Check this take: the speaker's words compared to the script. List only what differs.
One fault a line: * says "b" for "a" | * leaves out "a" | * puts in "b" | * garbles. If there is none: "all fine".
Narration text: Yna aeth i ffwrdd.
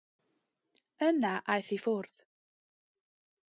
all fine